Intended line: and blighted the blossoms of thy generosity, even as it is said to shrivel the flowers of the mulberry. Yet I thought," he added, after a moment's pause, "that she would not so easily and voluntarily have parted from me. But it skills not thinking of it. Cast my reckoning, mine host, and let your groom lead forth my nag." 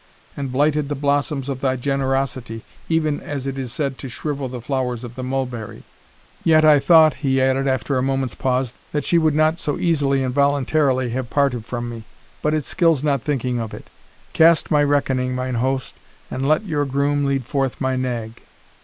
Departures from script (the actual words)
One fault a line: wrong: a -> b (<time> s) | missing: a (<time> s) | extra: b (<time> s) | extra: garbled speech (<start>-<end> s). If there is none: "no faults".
no faults